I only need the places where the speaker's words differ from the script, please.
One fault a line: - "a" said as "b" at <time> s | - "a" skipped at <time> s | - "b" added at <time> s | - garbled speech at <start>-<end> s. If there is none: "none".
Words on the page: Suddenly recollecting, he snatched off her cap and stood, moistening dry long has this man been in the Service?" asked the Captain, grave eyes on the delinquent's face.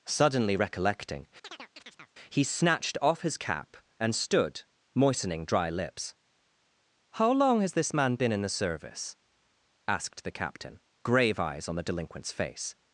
- "her" said as "his" at 3.2 s
- "lips How" added at 5.7 s